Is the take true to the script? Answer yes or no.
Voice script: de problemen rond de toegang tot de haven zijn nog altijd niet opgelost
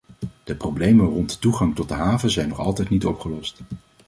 yes